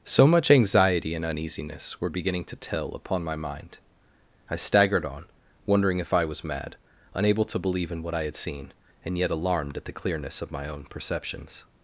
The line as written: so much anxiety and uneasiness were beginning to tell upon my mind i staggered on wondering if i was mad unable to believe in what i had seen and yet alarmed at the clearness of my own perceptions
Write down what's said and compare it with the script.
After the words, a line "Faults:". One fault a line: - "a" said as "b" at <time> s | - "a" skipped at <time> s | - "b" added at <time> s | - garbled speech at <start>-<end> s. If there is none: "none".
so much anxiety and uneasiness were beginning to tell upon my mind i staggered on wondering if i was mad unable to believe in what i had seen and yet alarmed at the clearness of my own perceptions
Faults:
none